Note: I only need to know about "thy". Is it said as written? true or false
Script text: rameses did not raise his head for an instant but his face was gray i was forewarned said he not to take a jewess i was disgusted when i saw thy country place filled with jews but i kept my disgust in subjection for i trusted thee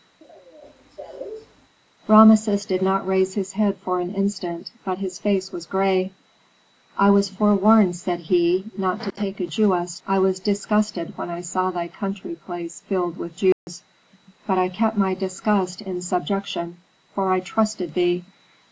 true